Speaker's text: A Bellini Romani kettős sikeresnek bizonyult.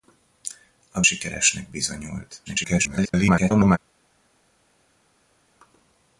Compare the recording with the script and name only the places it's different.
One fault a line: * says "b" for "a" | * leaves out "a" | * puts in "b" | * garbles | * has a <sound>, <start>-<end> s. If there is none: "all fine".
* leaves out "Bellini Romani kettős"
* garbles